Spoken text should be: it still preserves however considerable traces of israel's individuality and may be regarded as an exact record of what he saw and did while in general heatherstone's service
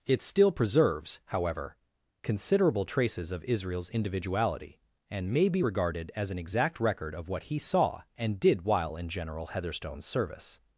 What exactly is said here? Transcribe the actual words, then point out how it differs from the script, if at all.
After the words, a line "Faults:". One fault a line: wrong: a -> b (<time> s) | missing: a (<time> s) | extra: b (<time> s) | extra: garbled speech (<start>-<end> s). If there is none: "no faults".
it still preserves however considerable traces of israel's individuality and may be regarded as an exact record of what he saw and did while in general heatherstone's service
Faults:
no faults